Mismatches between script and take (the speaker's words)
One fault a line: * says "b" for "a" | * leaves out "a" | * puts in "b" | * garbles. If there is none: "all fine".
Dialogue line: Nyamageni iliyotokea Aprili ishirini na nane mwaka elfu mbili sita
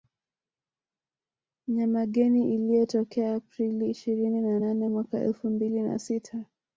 * puts in "na"